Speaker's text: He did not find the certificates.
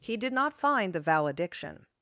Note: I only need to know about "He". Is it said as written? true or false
true